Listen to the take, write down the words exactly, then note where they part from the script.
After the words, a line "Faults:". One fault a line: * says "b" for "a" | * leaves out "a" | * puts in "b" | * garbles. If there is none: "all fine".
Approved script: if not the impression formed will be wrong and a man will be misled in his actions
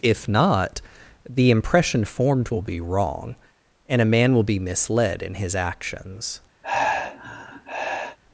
if not the impression formed will be wrong and a man will be misled in his actions
Faults:
all fine